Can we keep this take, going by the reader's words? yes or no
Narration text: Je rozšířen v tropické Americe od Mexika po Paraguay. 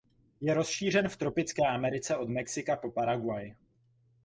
yes